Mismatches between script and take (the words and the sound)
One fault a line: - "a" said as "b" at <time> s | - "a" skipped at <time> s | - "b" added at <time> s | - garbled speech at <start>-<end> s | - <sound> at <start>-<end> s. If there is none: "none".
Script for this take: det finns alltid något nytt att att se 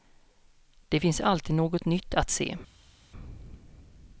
- "att" skipped at 2.3 s